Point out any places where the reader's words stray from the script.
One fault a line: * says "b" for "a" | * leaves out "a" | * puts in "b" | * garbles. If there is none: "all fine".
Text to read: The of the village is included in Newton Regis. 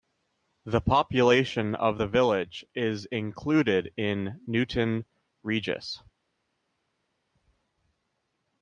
* puts in "population"